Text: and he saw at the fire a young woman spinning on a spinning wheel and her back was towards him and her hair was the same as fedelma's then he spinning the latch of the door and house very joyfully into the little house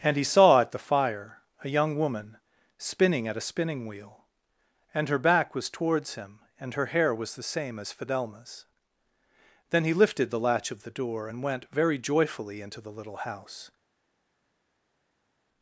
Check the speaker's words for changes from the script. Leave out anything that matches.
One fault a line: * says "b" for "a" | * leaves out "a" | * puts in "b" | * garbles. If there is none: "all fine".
* says "at" for "on"
* says "lifted" for "spinning"
* says "went" for "house"